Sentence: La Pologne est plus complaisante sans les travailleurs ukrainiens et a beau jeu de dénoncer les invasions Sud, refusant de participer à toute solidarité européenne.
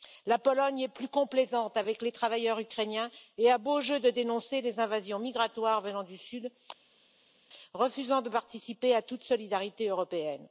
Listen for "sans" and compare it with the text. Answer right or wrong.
wrong